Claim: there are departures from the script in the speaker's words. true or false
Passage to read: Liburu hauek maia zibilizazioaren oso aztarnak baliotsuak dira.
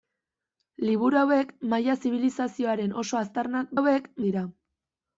true